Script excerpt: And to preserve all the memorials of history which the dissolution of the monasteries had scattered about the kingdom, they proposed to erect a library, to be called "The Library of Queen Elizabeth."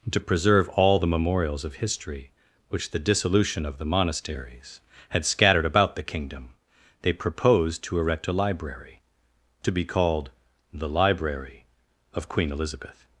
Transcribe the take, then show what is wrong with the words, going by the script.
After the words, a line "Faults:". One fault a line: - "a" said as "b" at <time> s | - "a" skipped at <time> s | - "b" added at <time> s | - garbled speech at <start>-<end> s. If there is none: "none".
to preserve all the memorials of history which the dissolution of the monasteries had scattered about the kingdom, they proposed to erect a library, to be called "The Library of Queen Elizabeth."
Faults:
- "And" skipped at 0.1 s